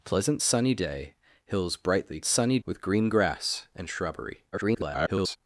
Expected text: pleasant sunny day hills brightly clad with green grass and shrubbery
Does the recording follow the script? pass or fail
fail